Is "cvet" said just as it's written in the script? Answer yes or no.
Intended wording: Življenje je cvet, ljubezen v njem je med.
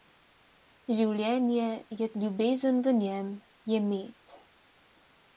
no